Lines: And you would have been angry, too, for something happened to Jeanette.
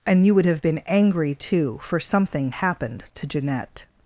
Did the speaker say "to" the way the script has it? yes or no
yes